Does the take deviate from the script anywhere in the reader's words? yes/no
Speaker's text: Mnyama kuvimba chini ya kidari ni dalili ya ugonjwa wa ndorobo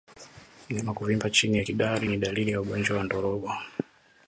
no